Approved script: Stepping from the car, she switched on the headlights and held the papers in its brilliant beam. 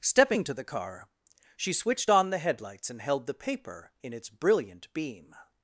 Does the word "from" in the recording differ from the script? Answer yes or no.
yes